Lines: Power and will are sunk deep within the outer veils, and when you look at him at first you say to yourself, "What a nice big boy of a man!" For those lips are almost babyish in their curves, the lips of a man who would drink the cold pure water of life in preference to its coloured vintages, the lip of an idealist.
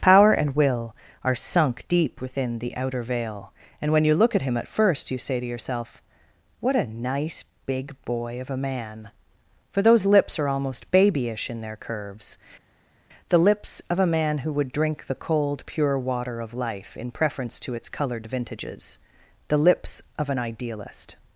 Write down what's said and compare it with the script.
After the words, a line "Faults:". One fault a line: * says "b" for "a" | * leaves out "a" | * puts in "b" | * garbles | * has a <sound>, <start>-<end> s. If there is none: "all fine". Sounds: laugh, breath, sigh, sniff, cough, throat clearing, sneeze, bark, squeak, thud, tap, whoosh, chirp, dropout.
Power and will are sunk deep within the outer veil, and when you look at him at first you say to yourself, "What a nice big boy of a man!" For those lips are almost babyish in their curves, the lips of a man who would drink the cold pure water of life in preference to its coloured vintages, the lips of an idealist.
Faults:
* says "veil" for "veils"
* says "lips" for "lip"